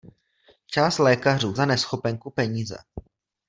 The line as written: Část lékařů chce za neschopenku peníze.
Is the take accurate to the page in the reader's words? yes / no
no